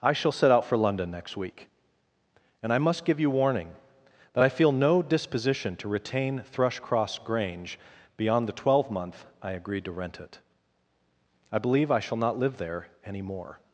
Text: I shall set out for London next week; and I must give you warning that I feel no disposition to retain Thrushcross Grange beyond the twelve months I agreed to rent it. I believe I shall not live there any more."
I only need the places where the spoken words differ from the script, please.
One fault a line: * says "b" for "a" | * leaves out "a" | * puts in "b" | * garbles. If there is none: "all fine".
* says "month" for "months"